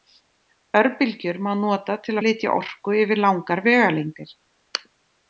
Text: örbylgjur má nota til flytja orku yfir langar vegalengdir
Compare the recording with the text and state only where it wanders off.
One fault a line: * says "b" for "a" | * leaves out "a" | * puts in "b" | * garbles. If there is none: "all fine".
all fine